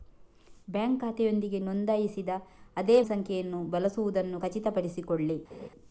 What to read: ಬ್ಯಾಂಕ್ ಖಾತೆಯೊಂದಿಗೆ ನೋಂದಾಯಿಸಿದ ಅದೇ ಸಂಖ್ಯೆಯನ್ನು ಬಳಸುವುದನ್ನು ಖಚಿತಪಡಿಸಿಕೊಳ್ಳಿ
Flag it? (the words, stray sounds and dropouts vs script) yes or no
yes